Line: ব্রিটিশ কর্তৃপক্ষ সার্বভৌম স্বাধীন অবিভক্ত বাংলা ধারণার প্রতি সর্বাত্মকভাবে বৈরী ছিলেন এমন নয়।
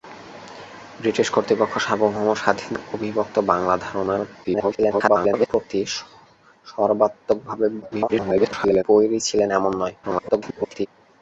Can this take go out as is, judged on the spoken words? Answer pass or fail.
fail